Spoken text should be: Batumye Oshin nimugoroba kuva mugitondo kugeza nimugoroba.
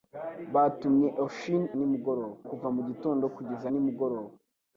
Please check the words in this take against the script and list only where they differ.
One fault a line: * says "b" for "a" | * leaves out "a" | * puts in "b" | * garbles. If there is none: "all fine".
all fine